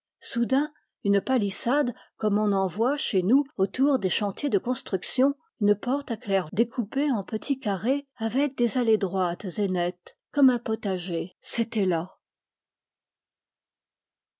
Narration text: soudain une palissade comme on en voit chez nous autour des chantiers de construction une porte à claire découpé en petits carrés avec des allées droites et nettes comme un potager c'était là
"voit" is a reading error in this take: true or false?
false